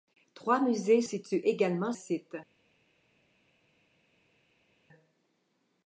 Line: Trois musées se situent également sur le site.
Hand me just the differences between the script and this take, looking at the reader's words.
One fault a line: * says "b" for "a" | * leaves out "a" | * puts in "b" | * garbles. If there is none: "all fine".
* leaves out "se"
* leaves out "sur le"